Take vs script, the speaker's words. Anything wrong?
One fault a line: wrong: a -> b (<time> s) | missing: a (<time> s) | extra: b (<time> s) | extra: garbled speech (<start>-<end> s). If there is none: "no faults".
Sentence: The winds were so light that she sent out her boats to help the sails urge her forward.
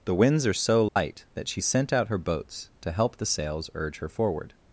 wrong: were -> are (0.5 s)